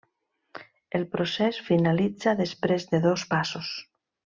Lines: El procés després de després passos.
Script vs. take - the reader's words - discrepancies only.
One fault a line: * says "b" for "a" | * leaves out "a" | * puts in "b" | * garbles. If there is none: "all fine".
* puts in "finalitza"
* says "dos" for "després"